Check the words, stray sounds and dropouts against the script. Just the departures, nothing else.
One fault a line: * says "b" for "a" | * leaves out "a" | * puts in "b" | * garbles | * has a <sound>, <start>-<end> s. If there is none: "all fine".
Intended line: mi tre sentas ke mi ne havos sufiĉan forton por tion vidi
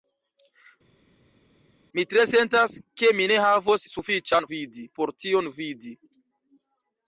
* says "vidi" for "forton"